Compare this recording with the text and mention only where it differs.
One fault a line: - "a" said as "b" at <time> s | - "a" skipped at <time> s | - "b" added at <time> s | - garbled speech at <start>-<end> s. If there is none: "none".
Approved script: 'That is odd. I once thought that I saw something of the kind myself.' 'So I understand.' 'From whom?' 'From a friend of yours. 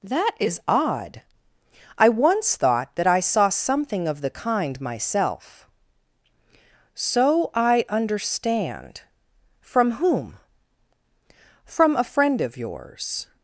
none